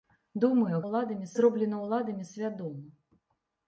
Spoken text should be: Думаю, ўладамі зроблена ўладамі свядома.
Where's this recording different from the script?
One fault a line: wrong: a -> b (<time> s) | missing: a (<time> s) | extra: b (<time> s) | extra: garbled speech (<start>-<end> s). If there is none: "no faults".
no faults